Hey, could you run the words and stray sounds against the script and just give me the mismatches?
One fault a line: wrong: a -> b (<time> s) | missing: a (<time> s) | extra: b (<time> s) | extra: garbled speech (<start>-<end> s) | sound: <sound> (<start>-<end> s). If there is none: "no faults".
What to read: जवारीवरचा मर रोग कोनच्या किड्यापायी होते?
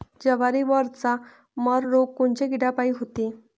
no faults